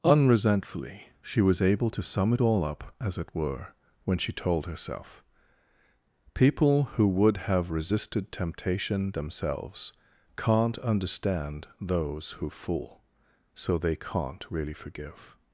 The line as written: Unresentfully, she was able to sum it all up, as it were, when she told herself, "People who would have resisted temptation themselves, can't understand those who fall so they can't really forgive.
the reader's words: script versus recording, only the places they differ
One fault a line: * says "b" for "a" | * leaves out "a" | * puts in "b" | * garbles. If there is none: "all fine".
* says "fool" for "fall"